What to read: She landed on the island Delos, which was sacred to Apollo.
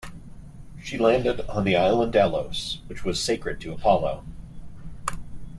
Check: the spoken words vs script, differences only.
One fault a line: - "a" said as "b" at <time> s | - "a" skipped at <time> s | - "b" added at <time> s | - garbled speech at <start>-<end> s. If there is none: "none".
none